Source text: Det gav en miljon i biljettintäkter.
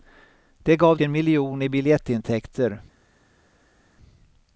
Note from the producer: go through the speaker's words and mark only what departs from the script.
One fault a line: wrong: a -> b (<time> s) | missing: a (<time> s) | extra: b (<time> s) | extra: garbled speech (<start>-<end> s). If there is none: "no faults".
no faults